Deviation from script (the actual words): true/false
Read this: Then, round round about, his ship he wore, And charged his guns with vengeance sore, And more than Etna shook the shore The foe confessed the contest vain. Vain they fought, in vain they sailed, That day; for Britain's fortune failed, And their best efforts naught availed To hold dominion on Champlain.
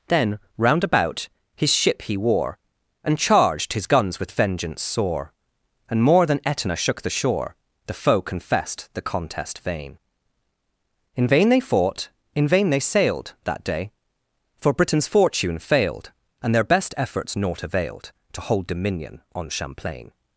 true